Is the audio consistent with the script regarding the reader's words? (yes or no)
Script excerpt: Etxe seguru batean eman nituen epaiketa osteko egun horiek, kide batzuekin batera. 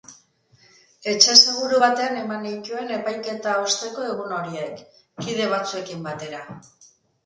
yes